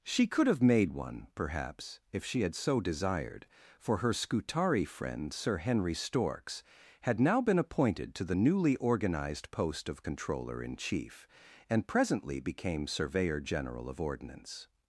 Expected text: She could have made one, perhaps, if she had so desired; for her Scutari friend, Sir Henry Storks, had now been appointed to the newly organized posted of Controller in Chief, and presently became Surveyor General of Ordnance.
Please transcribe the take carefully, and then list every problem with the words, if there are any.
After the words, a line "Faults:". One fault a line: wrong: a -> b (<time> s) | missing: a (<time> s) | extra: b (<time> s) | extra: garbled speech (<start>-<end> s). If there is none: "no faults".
She could have made one, perhaps, if she had so desired; for her Scutari friend, Sir Henry Storks, had now been appointed to the newly organized post of Controller in Chief, and presently became Surveyor General of Ordnance.
Faults:
wrong: posted -> post (9.5 s)